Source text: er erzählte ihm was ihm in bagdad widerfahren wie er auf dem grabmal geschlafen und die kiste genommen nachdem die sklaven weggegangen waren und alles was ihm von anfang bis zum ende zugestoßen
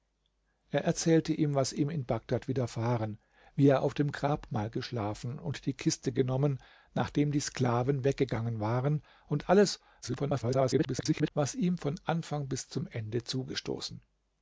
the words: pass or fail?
fail